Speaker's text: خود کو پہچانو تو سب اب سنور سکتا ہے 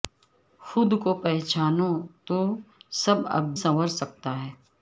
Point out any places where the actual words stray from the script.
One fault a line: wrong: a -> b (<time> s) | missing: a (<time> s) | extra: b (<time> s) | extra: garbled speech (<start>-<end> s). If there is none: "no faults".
no faults